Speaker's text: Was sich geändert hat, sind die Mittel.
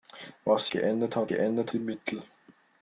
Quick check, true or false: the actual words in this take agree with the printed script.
false